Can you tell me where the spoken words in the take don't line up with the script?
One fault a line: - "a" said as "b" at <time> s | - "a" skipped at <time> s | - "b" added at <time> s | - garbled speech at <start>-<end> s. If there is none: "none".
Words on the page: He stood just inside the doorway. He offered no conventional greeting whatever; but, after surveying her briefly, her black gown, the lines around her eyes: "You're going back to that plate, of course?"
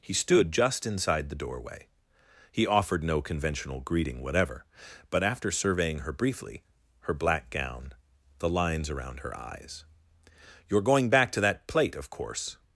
none